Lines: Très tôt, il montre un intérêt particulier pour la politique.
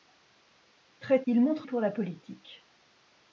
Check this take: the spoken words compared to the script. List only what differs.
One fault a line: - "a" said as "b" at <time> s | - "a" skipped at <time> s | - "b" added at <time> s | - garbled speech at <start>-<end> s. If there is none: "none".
- "tôt" skipped at 1.2 s
- "un intérêt particulier" skipped at 1.7 s